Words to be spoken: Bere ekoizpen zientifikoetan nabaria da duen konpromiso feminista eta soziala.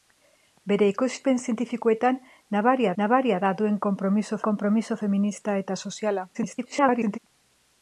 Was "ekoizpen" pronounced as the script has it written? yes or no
yes